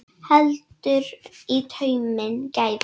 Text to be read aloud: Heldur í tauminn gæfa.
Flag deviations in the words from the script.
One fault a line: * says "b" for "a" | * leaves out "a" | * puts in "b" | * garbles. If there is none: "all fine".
all fine